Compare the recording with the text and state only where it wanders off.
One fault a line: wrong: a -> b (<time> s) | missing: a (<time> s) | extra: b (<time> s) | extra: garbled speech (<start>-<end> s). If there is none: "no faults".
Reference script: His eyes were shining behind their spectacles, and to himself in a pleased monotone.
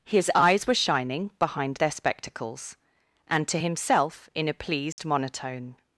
no faults